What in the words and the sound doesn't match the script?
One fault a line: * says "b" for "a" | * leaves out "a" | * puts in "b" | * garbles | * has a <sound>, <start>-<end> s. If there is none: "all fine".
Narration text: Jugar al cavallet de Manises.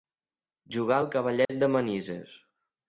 * has a dropout, 1.5-1.5 s